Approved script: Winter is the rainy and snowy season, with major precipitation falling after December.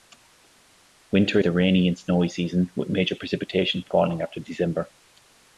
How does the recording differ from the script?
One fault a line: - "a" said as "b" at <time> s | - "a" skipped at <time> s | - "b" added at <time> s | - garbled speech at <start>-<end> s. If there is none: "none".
- "is" skipped at 1.4 s